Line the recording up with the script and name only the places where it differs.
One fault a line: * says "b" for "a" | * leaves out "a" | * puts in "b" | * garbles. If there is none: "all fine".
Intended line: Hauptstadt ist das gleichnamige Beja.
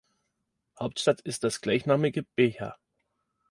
all fine